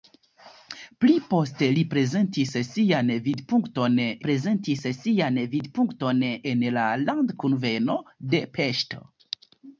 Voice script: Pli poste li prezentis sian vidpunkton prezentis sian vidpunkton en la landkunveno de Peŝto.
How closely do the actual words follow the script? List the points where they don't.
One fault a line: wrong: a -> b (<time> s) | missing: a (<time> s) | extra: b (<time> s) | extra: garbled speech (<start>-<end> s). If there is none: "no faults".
no faults